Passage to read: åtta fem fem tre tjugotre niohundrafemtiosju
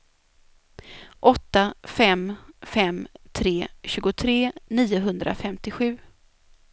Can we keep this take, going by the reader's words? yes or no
yes